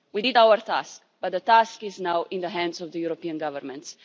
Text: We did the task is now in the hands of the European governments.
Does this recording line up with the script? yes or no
no